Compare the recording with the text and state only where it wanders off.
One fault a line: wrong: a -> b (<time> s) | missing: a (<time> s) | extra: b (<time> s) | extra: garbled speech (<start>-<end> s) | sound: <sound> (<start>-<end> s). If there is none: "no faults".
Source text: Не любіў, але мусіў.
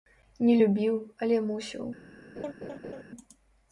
sound: laugh (2.4-3.0 s)